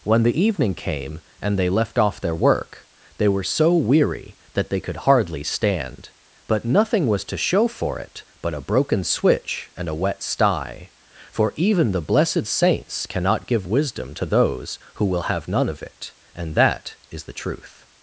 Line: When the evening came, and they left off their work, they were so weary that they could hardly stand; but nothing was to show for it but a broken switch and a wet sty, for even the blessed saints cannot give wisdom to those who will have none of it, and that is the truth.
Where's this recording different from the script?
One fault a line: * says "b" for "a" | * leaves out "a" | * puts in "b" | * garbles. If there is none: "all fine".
all fine